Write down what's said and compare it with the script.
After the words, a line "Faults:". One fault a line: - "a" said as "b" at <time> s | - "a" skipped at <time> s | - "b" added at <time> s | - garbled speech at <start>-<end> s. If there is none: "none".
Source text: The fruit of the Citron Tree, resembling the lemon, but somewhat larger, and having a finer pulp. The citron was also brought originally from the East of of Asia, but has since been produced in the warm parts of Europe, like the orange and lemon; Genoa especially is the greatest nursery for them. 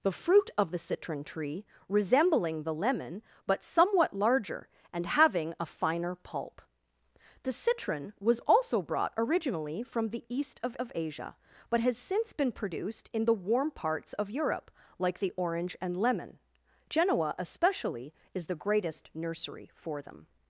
The fruit of the Citron Tree, resembling the lemon, but somewhat larger, and having a finer pulp. The citron was also brought originally from the East of of Asia, but has since been produced in the warm parts of Europe, like the orange and lemon; Genoa especially is the greatest nursery for them.
Faults:
none